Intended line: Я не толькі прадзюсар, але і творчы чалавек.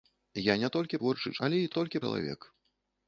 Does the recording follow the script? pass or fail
fail